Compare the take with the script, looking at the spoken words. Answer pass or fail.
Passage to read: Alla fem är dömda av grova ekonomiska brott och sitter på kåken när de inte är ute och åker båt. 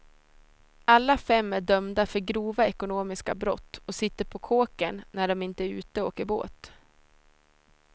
fail